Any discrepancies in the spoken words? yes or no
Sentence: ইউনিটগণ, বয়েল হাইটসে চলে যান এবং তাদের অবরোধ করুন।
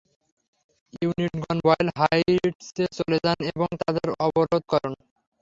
no